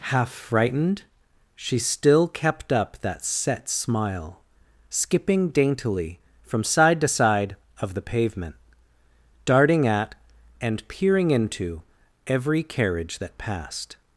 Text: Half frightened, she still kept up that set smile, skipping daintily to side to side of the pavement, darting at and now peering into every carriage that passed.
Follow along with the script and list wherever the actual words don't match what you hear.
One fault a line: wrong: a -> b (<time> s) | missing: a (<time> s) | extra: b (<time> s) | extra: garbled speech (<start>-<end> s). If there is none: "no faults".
wrong: to -> from (6.5 s)
missing: now (10.9 s)